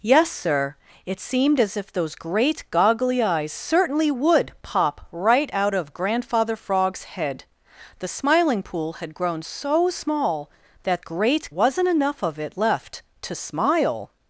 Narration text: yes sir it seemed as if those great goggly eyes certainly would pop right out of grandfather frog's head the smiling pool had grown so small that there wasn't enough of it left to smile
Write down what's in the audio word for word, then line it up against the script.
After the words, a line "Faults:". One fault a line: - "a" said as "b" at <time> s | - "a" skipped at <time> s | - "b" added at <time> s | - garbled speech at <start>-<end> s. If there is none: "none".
yes sir it seemed as if those great goggly eyes certainly would pop right out of grandfather frog's head the smiling pool had grown so small that great wasn't enough of it left to smile
Faults:
- "there" said as "great" at 11.0 s